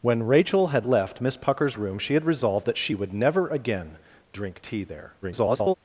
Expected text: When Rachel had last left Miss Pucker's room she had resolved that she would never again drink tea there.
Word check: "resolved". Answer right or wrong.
right